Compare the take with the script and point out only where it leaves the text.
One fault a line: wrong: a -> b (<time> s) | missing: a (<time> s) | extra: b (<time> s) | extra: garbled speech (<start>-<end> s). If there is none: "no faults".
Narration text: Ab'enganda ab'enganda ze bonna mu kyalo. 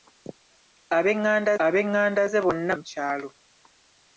no faults